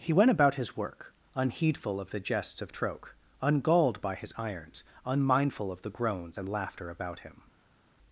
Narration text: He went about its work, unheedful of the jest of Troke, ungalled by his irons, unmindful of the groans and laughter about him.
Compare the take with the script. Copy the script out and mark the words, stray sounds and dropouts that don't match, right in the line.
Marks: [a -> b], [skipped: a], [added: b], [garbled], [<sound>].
He went about [its -> his] work, unheedful of the [jest -> jests] of Troke, ungalled by his irons, unmindful of the groans and laughter about him.